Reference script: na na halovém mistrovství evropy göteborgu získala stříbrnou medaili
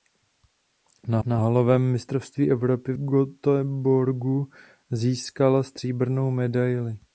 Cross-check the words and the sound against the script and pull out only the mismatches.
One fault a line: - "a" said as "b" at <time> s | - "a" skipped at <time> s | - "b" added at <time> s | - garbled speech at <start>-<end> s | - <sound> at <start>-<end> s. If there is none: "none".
none